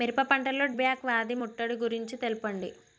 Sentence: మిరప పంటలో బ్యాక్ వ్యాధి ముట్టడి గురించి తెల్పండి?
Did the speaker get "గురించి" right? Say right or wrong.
right